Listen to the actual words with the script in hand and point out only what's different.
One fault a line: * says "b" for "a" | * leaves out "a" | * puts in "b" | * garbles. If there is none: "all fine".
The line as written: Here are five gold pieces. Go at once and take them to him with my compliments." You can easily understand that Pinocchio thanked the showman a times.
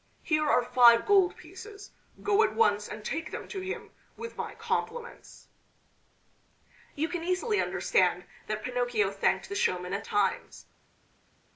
all fine